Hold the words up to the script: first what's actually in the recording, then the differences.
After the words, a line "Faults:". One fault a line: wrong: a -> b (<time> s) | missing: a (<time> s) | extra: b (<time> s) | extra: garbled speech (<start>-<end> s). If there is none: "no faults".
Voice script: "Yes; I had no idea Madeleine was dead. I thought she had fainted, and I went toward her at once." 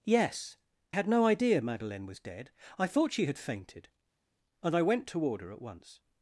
"Yes; had no idea Madeleine was dead. I thought she had fainted, and I went toward her at once."
Faults:
missing: I (0.6 s)